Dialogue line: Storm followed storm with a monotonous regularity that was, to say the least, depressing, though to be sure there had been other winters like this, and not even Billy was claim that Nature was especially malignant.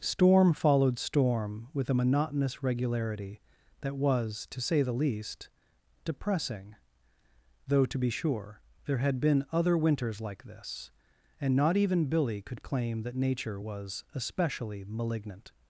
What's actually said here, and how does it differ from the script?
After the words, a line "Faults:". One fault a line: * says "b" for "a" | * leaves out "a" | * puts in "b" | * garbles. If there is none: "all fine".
Storm followed storm with a monotonous regularity that was, to say the least, depressing, though to be sure there had been other winters like this, and not even Billy could claim that Nature was especially malignant.
Faults:
* says "could" for "was"